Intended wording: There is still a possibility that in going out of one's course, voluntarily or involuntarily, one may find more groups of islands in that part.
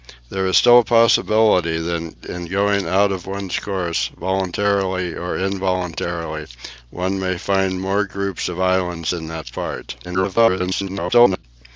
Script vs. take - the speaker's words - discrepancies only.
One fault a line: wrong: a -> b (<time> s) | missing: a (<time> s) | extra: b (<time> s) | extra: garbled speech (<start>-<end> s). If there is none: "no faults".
extra: garbled speech (10.0-11.4 s)